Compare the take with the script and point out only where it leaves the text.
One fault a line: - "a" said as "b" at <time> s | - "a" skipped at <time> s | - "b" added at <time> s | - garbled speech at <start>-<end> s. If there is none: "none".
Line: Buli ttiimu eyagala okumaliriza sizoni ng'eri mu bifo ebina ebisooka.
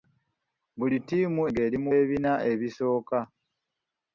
- "eyagala okumaliriza sizoni" skipped at 1.4 s
- "bifo" skipped at 1.9 s